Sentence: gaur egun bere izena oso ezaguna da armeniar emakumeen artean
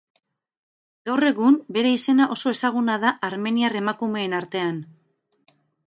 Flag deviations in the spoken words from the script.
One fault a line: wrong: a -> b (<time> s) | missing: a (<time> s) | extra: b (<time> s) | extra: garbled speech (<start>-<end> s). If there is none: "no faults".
no faults